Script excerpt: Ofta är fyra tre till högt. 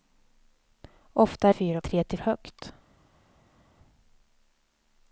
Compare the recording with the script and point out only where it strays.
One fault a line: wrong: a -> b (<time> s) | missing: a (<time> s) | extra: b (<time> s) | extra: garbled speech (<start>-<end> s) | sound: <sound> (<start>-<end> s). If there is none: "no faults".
no faults